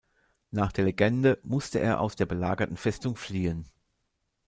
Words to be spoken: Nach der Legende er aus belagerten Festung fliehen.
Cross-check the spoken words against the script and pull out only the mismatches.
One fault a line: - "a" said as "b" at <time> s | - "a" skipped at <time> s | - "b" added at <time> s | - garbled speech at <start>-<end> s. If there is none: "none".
- "musste" added at 1.4 s
- "der" added at 2.1 s